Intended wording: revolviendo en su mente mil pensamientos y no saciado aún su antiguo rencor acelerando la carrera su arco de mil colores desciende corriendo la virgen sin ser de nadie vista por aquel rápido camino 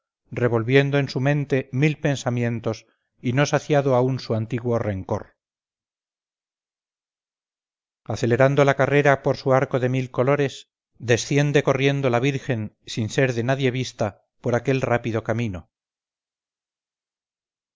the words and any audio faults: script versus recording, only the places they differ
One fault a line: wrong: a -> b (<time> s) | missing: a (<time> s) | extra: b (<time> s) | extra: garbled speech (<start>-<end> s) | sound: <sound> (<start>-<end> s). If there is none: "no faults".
extra: por (9.2 s)